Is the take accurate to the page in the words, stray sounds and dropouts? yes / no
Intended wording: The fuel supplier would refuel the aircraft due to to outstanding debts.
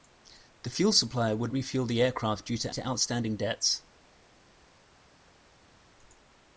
yes